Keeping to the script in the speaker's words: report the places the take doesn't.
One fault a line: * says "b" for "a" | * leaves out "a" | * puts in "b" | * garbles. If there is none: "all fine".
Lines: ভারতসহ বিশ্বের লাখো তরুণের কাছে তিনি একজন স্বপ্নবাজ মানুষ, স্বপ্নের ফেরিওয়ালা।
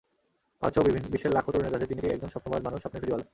all fine